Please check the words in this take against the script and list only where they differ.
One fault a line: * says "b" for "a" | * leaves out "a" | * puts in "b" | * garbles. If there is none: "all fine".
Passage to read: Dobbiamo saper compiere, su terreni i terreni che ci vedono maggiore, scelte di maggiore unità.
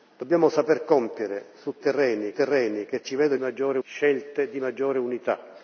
all fine